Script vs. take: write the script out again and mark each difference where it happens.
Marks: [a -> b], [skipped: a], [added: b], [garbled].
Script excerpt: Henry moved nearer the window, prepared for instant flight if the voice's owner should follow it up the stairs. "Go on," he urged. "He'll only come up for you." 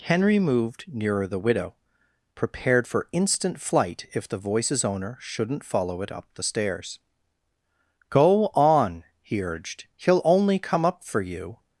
Henry moved nearer the [window, -> widow] prepared for instant flight if the voice's owner [should -> shouldn't] follow it up the stairs. "Go on," he urged. "He'll only come up for you."